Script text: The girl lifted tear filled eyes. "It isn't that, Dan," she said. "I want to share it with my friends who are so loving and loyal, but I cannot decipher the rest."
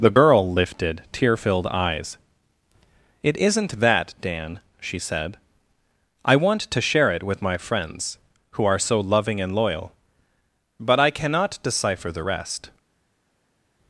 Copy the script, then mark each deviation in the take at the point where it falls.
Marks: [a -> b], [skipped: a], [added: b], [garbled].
The girl lifted tear filled eyes. "It isn't that, Dan," she said. "I want to share it with my friends who are so loving and loyal, but I cannot decipher the rest."